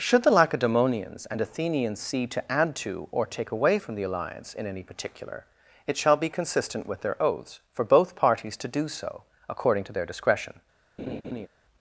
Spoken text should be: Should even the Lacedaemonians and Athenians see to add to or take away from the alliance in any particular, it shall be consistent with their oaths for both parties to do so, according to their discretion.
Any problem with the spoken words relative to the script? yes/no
yes